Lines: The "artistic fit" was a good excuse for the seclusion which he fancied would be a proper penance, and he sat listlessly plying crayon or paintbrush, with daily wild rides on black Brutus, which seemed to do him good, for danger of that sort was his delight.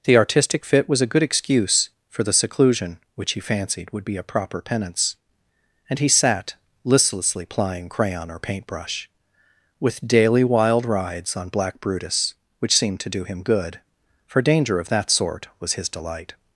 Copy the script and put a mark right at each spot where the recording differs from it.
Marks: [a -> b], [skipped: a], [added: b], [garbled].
The "artistic fit" was a good excuse for the seclusion which he fancied would be a proper penance, and he sat listlessly plying crayon or paintbrush, with daily wild rides on black Brutus, which seemed to do him good, for danger of that sort was his delight.